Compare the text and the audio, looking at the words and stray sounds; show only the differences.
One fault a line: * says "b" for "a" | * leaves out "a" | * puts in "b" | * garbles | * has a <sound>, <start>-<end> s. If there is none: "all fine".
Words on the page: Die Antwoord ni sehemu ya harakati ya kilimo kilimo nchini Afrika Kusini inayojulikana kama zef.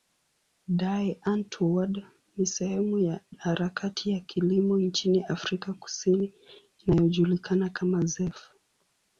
* leaves out "kilimo"